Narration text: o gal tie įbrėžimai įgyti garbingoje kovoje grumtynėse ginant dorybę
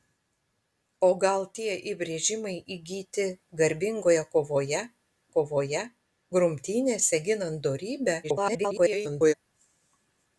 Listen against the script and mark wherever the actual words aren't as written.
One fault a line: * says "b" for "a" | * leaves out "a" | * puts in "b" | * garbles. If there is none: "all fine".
* puts in "kovoje"
* garbles